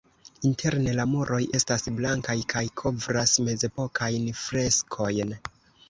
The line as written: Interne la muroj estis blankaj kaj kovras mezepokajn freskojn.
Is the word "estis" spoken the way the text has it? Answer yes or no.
no